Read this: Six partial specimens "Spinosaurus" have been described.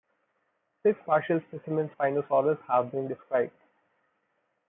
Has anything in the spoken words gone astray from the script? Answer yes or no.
no